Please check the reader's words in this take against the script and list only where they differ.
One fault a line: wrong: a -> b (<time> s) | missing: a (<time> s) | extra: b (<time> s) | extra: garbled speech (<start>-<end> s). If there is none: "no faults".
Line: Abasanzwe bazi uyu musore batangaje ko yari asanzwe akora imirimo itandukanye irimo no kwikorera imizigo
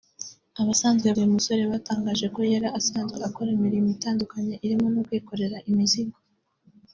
missing: bazi (1.1 s)